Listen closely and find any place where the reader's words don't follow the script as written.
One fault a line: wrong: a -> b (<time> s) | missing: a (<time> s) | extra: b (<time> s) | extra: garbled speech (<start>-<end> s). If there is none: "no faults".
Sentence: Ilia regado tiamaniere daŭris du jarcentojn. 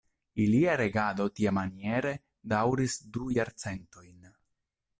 no faults